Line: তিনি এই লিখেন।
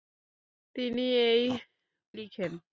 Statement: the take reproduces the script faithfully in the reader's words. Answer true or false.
true